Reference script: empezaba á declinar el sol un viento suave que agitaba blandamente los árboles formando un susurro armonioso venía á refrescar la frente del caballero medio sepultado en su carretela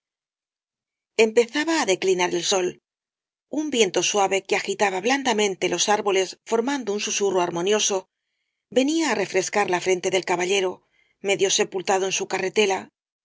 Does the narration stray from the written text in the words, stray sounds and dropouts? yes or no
no